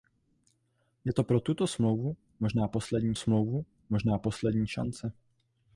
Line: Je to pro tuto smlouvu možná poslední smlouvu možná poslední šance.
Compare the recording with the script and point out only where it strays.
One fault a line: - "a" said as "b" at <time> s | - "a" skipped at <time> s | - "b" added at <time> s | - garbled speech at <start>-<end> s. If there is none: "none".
none